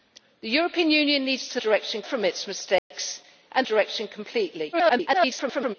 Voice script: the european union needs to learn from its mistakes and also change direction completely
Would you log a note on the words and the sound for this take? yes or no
yes